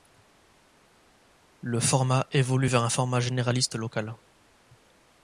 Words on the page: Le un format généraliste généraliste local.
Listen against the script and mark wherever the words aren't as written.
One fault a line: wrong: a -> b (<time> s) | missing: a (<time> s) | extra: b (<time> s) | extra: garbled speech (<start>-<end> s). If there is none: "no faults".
extra: format évolue vers (1.8 s)
missing: généraliste (3.8 s)